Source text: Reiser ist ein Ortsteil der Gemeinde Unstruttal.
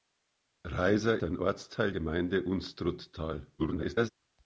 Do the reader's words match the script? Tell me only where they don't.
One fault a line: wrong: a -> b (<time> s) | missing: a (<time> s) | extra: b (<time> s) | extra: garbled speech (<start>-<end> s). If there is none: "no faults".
missing: ist (1.2 s)
missing: der (1.9 s)
extra: garbled speech (3.6-4.1 s)